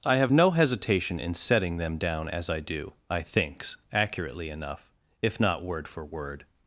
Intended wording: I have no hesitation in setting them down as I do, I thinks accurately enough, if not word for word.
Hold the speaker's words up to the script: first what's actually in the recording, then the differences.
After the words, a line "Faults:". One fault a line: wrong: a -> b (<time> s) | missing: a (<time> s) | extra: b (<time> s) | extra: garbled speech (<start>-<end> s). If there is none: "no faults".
I have no hesitation in setting them down as I do, I thinks accurately enough, if not word for word.
Faults:
no faults